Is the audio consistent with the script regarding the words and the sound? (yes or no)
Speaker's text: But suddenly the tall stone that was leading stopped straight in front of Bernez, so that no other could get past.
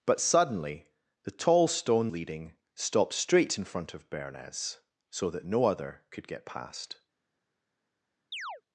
no